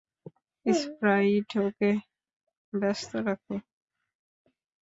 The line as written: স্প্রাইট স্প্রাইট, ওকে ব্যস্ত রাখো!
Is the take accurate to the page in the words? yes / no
no